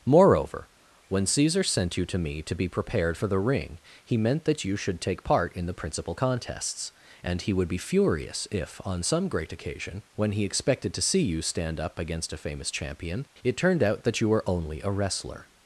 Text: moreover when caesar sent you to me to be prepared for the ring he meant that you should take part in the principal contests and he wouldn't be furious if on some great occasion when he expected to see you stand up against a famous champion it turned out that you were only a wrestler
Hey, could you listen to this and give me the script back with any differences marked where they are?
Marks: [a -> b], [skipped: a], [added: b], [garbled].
moreover when caesar sent you to me to be prepared for the ring he meant that you should take part in the principal contests and he [wouldn't -> would] be furious if on some great occasion when he expected to see you stand up against a famous champion it turned out that you were only a wrestler